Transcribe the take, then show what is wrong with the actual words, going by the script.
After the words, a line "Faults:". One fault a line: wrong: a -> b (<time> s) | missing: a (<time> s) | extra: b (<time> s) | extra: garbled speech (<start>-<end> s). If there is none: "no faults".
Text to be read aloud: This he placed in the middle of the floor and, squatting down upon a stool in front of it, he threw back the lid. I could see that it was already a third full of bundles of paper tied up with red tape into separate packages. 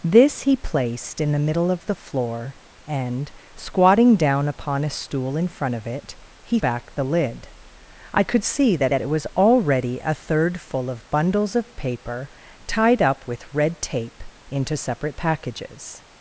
This he placed in the middle of the floor and, squatting down upon a stool in front of it, he back the lid. I could see that that it was already a third full of bundles of paper tied up with red tape into separate packages.
Faults:
missing: threw (6.6 s)
extra: that (8.9 s)